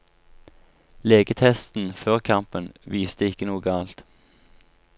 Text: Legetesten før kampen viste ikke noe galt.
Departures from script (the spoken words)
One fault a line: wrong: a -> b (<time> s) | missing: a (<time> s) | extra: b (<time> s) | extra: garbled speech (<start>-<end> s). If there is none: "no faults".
no faults